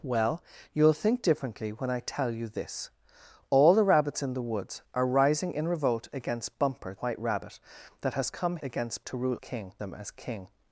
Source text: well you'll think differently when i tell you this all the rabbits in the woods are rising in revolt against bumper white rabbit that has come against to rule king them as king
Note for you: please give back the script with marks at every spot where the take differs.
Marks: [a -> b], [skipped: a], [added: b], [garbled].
well you'll think differently when i tell you this all the rabbits in the woods are rising in revolt against bumper white rabbit that has come against to rule king them as king